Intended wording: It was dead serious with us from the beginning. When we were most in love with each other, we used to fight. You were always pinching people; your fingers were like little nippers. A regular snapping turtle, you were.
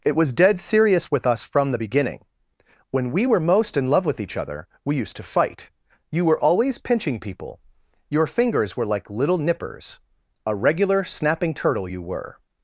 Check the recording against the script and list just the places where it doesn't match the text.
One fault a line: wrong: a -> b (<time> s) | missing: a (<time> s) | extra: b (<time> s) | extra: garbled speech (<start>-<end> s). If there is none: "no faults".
no faults